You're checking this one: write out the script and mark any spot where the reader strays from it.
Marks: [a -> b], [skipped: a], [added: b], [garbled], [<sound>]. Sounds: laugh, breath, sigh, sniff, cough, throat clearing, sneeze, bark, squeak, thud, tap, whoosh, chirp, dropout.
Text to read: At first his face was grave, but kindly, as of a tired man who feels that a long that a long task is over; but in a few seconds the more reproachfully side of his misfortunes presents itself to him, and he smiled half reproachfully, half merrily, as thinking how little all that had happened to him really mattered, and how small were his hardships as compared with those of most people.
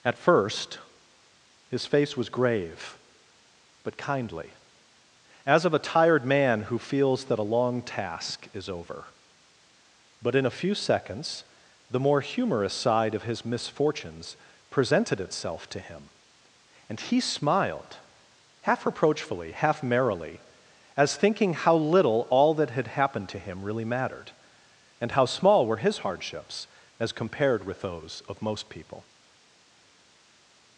At first his face was grave, but kindly, as of a tired man who feels that a long [skipped: that a long] task is over; but in a few seconds the more [reproachfully -> humorous] side of his misfortunes [presents -> presented] itself to him, and he smiled half reproachfully, half merrily, as thinking how little all that had happened to him really mattered, and how small were his hardships as compared with those of most people.